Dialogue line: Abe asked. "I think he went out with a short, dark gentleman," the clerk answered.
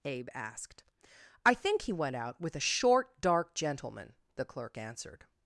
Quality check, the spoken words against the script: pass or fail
pass